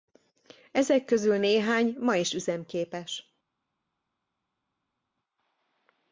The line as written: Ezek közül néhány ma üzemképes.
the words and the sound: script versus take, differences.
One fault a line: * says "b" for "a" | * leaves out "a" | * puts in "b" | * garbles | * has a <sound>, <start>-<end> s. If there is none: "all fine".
* puts in "is"